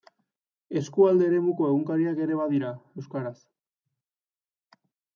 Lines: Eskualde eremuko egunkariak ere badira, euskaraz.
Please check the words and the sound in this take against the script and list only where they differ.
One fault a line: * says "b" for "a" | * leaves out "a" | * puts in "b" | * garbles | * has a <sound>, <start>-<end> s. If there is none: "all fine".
all fine